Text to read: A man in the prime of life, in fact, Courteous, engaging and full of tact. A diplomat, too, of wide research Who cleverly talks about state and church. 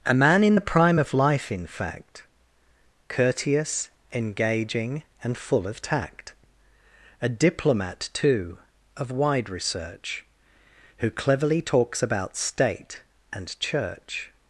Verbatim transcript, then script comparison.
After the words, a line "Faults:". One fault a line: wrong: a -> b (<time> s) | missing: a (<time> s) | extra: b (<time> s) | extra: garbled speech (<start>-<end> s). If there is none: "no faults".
A man in the prime of life, in fact, Courteous, engaging and full of tact. A diplomat, too, of wide research Who cleverly talks about state and church.
Faults:
no faults